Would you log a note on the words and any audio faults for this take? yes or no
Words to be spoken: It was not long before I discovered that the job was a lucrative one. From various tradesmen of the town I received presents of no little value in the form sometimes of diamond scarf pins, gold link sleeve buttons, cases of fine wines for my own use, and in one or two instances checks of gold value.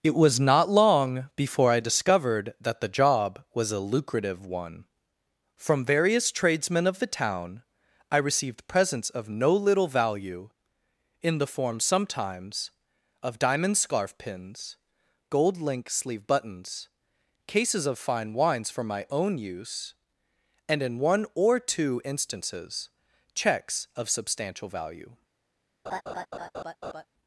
yes